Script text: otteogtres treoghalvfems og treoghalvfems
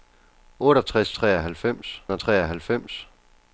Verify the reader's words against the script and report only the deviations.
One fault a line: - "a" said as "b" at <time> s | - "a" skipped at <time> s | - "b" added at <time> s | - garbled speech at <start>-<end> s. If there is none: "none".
none